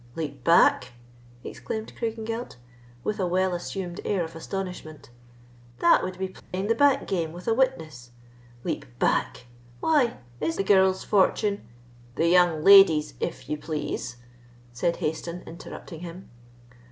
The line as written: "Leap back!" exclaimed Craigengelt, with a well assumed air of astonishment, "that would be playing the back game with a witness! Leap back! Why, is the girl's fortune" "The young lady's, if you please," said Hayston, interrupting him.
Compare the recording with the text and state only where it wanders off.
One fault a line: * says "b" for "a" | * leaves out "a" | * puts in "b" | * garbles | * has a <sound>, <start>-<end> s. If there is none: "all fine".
* has a dropout, 6.4-6.5 s